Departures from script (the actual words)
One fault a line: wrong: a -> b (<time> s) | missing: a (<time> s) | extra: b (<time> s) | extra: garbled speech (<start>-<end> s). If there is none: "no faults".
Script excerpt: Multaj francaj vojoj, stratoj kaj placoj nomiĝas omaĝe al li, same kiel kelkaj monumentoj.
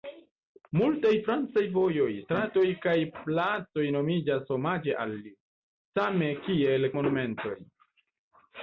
missing: kelkaj (6.9 s)